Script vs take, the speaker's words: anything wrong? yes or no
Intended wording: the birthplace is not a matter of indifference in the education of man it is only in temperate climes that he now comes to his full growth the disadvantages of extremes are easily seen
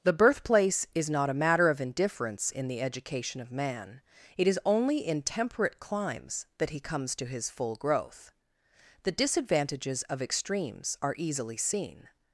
yes